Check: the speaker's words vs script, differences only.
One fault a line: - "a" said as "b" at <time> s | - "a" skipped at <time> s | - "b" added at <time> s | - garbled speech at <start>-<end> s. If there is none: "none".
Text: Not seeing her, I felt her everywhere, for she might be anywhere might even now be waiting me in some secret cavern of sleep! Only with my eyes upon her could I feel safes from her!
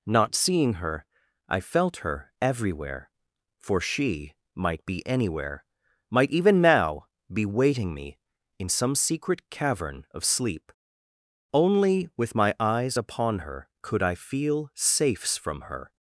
none